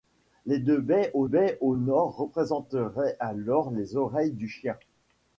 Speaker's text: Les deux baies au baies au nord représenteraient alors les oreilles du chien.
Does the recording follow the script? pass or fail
pass